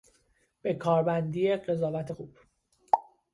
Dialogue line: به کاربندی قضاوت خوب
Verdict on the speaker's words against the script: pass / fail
pass